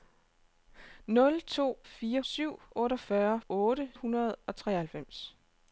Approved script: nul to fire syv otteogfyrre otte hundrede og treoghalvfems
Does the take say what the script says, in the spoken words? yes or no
yes